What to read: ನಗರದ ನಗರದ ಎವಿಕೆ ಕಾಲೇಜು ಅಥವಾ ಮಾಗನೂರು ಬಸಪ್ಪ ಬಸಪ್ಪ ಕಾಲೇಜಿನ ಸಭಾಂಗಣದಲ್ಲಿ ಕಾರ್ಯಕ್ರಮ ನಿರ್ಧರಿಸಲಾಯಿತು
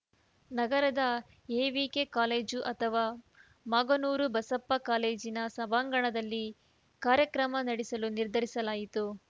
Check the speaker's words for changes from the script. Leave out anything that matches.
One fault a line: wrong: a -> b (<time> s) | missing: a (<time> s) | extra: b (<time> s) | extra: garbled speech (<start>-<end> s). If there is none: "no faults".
missing: ನಗರದ (1.0 s)
missing: ಬಸಪ್ಪ (4.7 s)
extra: ನಡೆಸಲು (7.6 s)